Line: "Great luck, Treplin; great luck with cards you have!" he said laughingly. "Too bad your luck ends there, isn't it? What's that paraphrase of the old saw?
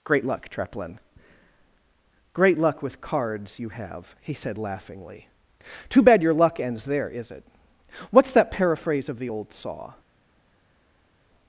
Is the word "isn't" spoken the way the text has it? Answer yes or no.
no